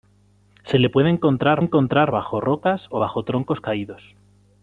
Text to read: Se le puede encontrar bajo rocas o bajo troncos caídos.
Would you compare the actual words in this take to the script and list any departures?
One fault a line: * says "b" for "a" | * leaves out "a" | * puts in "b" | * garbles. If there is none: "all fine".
* puts in "encontrar"